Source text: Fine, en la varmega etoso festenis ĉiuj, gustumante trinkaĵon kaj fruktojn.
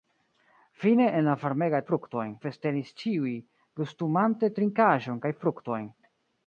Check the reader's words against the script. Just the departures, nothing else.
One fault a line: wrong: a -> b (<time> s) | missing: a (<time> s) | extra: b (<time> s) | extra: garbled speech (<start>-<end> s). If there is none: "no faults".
wrong: etoso -> fruktojn (1.9 s)